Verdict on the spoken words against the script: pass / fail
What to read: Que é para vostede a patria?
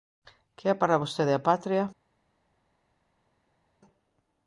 pass